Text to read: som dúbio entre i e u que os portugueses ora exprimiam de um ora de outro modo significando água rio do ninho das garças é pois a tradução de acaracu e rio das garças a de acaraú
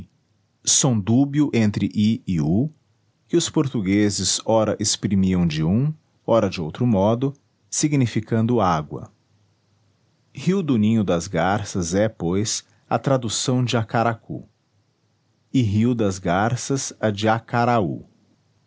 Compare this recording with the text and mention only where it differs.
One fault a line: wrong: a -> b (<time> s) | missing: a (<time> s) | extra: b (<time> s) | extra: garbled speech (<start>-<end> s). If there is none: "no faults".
no faults